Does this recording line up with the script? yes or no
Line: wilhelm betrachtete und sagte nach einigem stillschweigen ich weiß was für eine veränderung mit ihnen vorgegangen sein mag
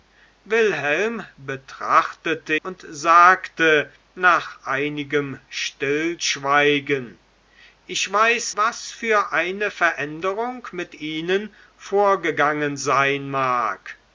yes